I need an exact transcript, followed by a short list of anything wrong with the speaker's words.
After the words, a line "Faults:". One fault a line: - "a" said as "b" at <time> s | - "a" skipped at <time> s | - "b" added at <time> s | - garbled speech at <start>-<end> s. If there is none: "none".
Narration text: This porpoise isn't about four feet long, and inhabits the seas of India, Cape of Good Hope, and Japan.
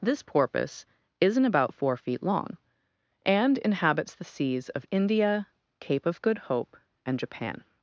This porpoise isn't about four feet long, and inhabits the seas of India, Cape of Good Hope, and Japan.
Faults:
none